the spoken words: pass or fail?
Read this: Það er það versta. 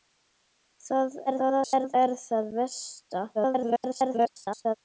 fail